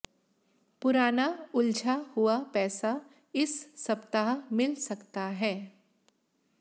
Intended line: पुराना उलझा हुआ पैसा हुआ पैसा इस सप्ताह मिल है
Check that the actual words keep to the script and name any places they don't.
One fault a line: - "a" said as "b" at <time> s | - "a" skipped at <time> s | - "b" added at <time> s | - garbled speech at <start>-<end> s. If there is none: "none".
- "हुआ पैसा" skipped at 2.9 s
- "सकता" added at 4.7 s